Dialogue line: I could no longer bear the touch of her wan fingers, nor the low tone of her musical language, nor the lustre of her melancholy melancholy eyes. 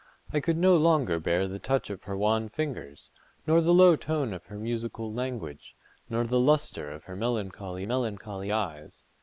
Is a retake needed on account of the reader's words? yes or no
no